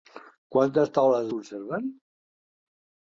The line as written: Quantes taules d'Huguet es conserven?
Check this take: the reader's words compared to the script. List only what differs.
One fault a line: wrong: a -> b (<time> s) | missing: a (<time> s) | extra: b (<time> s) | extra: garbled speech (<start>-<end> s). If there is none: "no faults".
missing: d'Huguet es (1.3 s)